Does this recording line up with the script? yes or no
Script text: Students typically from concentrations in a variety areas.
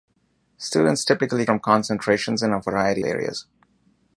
yes